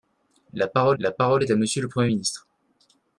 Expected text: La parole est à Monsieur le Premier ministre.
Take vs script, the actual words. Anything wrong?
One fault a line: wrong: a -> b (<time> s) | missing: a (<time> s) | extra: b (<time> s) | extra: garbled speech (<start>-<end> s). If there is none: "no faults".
extra: la parole (1.0 s)